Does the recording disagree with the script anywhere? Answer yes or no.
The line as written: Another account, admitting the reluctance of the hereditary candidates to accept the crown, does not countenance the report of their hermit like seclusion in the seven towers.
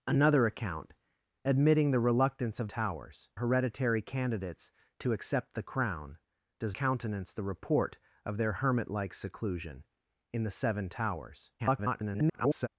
yes